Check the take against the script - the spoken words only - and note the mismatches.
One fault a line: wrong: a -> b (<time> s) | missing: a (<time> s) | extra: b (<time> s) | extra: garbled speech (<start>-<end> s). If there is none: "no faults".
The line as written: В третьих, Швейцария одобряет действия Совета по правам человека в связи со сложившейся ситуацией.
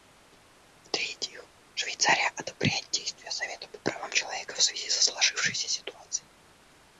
no faults